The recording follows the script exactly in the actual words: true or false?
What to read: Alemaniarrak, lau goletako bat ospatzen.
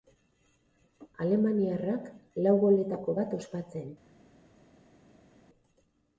true